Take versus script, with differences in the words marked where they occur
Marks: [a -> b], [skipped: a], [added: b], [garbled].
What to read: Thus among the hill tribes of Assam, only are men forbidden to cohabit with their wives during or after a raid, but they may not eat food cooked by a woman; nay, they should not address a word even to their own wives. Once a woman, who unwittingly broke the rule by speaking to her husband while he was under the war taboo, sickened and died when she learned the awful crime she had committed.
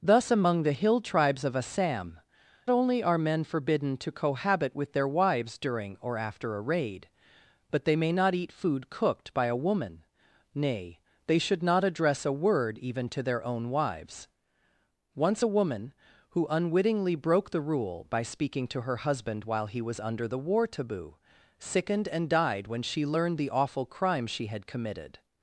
Thus among the hill tribes of Assam, only are men forbidden to cohabit with their wives during or after a raid, but they may not eat food cooked by a woman; nay, they should not address a word even to their own wives. Once a woman, who unwittingly broke the rule by speaking to her husband while he was under the war taboo, sickened and died when she learned the awful crime she had committed.